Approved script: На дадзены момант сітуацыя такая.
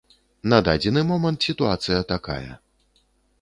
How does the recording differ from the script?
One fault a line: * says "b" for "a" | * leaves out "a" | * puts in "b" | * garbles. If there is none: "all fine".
all fine